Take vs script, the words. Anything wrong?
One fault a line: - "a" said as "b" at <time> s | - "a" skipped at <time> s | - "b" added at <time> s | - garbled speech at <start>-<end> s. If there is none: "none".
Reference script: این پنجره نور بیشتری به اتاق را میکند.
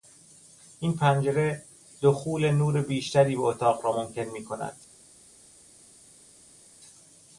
- "دخول" added at 2.0 s
- "ممکن" added at 3.9 s